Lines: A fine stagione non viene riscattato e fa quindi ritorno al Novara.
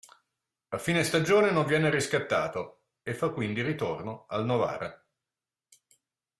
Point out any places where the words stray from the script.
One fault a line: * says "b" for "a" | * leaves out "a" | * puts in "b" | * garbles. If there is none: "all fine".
all fine